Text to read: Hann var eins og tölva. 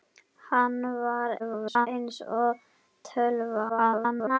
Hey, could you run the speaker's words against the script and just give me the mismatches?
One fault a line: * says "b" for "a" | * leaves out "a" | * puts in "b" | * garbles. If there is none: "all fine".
* garbles
* garbles